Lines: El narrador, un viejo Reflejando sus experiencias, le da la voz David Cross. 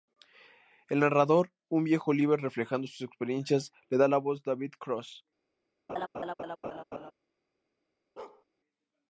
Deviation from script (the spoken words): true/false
true